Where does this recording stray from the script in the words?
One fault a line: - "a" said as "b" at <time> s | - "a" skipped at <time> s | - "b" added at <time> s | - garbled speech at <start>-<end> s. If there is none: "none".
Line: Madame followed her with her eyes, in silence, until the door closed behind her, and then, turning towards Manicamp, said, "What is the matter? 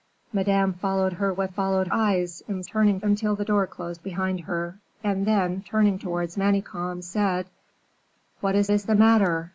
- "her" said as "followed" at 1.5 s
- "silence" said as "turning" at 2.7 s
- "is" added at 8.7 s